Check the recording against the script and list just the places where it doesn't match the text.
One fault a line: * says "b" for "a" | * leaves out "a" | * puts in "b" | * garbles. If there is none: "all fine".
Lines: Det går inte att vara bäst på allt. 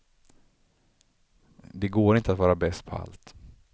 all fine